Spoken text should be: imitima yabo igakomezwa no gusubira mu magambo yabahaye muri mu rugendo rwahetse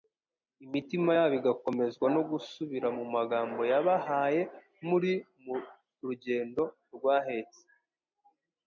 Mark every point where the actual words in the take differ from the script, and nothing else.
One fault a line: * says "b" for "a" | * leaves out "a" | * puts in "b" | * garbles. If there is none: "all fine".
all fine